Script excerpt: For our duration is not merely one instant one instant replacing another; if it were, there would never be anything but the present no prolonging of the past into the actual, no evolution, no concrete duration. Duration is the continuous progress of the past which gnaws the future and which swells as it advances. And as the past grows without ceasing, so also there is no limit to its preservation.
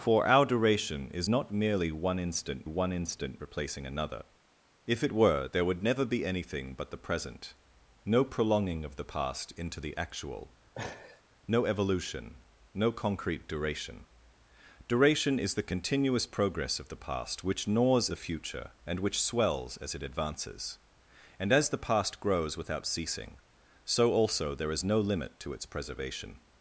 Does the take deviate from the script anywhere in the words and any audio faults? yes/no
yes